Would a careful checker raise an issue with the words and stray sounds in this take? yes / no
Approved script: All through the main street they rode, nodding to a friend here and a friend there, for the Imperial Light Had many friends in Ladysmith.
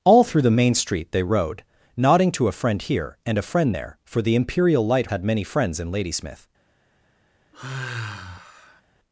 yes